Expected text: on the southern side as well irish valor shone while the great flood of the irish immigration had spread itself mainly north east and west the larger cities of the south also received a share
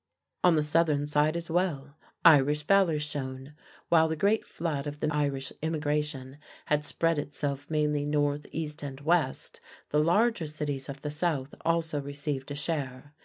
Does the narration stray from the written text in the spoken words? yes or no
no